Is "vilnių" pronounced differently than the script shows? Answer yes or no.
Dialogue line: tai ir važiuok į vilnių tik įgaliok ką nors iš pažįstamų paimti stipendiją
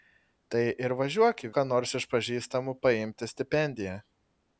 yes